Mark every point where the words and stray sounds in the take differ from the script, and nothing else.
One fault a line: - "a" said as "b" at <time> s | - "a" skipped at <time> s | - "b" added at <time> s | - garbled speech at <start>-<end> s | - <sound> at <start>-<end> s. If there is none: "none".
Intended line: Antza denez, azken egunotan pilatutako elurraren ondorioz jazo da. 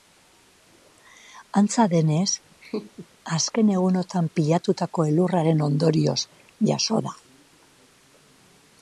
- laugh at 2.6-3.1 s